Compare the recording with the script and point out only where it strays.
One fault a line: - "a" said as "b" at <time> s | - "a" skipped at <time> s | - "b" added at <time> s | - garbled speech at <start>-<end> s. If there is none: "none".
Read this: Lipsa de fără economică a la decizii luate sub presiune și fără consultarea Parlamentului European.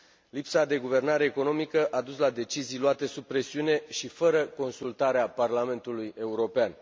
- "fără" said as "guvernare" at 0.8 s
- "dus" added at 2.0 s